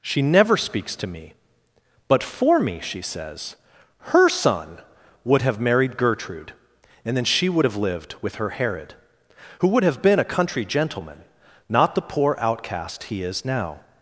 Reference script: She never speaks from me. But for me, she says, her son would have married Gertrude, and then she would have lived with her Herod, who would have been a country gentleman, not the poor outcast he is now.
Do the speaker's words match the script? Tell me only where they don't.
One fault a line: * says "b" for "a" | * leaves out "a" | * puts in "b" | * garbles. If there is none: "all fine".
* says "to" for "from"